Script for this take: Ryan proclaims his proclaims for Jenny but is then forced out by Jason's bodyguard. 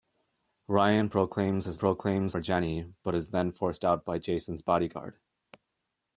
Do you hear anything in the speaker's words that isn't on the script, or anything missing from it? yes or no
no